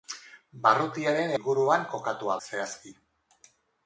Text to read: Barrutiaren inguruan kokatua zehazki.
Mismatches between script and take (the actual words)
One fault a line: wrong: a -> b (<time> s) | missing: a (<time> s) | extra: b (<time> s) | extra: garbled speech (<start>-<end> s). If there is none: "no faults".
no faults